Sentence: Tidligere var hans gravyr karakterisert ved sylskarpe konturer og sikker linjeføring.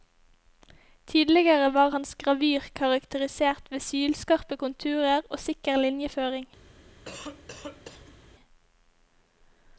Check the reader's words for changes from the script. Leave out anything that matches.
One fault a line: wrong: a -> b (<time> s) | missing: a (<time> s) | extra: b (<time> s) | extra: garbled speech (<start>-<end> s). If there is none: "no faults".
no faults